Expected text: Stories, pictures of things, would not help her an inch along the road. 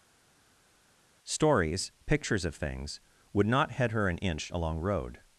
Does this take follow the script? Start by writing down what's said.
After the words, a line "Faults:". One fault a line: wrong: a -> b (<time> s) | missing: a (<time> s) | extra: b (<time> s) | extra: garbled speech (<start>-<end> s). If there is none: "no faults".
Stories, pictures of things, would not head her an inch along road.
Faults:
wrong: help -> head (3.7 s)
missing: the (4.8 s)